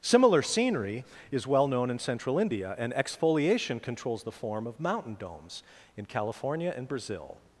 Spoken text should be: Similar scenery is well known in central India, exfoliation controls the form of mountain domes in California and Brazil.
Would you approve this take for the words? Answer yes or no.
no